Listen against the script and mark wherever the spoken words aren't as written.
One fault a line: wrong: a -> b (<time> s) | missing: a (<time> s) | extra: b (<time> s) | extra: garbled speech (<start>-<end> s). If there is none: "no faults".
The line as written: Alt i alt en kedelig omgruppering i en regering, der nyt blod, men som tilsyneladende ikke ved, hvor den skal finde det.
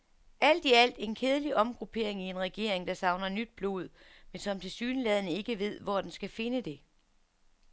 extra: savner (2.9 s)